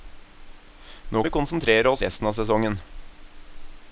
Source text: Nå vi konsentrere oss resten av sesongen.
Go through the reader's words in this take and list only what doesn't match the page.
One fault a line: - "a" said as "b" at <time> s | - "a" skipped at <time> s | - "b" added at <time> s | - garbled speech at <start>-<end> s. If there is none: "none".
none